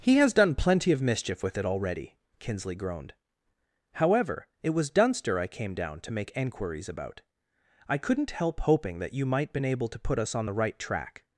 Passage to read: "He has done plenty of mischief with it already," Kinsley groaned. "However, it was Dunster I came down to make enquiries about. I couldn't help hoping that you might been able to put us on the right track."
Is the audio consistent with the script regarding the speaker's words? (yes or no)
yes